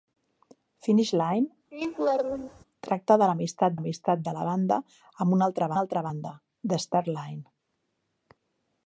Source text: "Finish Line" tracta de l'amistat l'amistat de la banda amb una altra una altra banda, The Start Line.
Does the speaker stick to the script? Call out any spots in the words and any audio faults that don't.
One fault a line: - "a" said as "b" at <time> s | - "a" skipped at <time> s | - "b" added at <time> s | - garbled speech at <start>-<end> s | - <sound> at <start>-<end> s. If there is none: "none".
- laugh at 1.7-2.7 s